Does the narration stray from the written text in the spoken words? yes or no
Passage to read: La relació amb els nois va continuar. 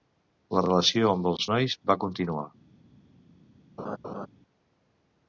no